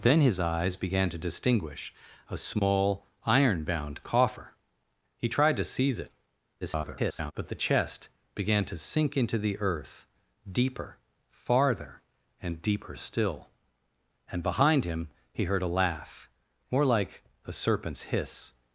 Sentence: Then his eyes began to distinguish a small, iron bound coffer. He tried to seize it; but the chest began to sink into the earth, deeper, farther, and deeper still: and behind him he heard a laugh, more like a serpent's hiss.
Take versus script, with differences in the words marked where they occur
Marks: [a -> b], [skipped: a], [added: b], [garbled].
Then his eyes began to distinguish a small, iron bound coffer. He tried to seize it; [garbled] but the chest began to sink into the earth, deeper, farther, and deeper still: and behind him he heard a laugh, more like a serpent's hiss.